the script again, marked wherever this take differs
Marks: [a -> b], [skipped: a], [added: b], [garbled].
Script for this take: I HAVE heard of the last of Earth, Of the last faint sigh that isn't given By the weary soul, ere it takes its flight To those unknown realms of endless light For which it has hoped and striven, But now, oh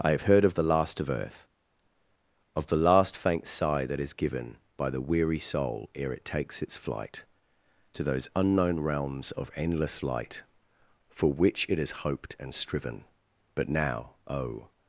I HAVE heard of the last of Earth, Of the last faint sigh that [isn't -> is] given By the weary soul, ere it takes its flight To those unknown realms of endless light For which it has hoped and striven, But now, oh